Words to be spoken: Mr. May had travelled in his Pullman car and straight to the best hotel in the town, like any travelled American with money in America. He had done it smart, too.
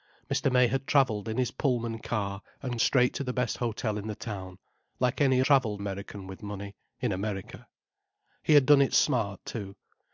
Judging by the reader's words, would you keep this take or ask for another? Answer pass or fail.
pass